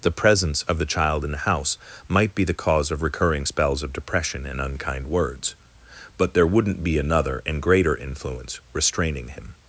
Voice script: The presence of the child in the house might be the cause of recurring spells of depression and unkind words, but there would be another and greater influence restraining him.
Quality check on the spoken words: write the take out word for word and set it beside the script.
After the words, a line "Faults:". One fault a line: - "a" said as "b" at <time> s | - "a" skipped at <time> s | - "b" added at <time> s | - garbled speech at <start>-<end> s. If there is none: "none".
The presence of the child in the house might be the cause of recurring spells of depression and unkind words, but there wouldn't be another and greater influence restraining him.
Faults:
- "would" said as "wouldn't" at 6.5 s